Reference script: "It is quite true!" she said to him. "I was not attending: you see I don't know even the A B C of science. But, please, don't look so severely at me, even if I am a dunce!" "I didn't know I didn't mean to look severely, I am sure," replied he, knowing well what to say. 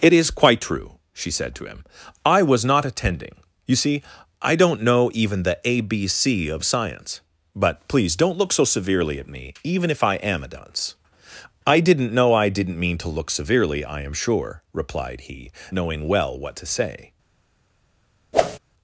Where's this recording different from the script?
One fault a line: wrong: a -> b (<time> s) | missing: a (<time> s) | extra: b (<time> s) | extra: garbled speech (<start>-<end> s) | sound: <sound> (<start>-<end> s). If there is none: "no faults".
sound: whoosh (18.3-18.6 s)